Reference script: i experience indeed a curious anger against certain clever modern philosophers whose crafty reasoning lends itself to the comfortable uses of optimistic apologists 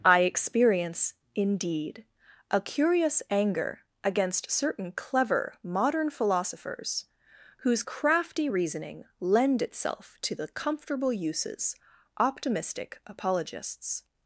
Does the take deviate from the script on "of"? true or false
true